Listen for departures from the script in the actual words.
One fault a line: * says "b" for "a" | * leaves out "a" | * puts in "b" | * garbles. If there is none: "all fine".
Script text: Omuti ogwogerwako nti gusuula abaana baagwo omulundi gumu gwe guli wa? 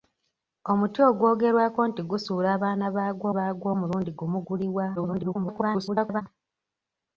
* puts in "baagwo"
* leaves out "gwe"
* garbles